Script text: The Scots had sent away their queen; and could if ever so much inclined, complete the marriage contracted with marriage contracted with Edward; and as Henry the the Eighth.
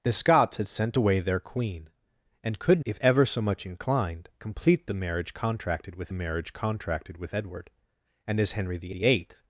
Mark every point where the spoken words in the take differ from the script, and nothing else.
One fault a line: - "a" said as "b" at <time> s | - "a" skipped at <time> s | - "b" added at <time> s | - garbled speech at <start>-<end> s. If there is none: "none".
none